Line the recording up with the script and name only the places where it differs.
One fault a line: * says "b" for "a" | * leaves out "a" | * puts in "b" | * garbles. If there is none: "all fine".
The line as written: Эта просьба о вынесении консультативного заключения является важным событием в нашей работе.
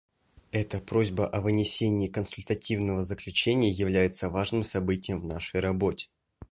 all fine